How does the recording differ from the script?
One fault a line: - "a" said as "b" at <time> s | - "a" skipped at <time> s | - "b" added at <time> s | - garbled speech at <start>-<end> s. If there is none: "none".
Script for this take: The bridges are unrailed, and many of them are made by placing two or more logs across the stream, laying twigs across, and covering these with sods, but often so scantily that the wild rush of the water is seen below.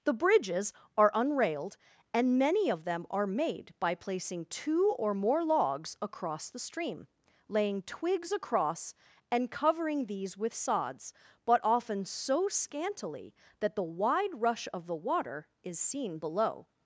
- "wild" said as "wide" at 13.8 s